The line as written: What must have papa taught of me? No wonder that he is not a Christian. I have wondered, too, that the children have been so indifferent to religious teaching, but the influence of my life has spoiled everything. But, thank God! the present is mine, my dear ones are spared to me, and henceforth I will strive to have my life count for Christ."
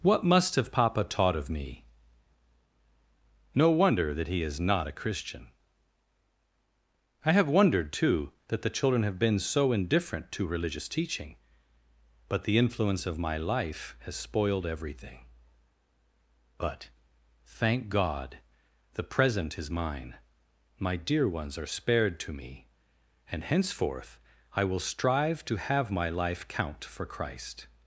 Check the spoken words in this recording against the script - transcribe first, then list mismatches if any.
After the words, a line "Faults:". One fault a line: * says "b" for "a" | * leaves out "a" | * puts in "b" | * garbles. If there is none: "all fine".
What must have papa taught of me? No wonder that he is not a Christian. I have wondered, too, that the children have been so indifferent to religious teaching, but the influence of my life has spoiled everything. But, thank God! the present is mine, my dear ones are spared to me, and henceforth I will strive to have my life count for Christ."
Faults:
all fine